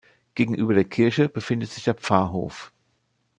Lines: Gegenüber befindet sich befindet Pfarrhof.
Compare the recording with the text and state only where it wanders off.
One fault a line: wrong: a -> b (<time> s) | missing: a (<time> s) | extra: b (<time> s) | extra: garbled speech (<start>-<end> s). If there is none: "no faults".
extra: der Kirche (0.7 s)
wrong: befindet -> der (1.8 s)